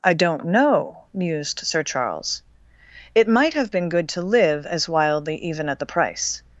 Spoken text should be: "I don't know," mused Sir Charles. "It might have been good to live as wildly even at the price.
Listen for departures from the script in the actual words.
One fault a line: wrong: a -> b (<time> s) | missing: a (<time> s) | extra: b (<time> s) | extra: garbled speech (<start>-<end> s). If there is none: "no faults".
no faults